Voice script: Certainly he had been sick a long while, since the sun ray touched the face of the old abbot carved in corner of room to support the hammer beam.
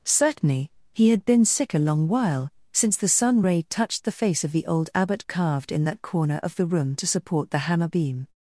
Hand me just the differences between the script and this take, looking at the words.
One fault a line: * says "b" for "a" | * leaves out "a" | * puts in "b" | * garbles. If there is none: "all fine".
* puts in "that"
* puts in "the"